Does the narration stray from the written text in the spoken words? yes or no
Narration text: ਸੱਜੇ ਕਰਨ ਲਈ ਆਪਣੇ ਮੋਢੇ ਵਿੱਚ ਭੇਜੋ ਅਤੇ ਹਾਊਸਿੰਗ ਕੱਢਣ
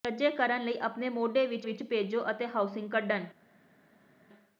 yes